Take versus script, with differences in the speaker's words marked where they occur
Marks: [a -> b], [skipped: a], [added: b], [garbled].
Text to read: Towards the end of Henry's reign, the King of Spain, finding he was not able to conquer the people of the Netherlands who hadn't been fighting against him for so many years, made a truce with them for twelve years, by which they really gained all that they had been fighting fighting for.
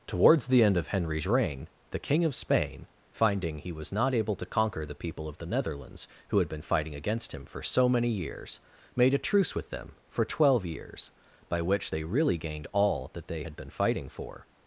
Towards the end of Henry's reign, the King of Spain, finding he was not able to conquer the people of the Netherlands who [hadn't -> had] been fighting against him for so many years, made a truce with them for twelve years, by which they really gained all that they had been fighting [skipped: fighting] for.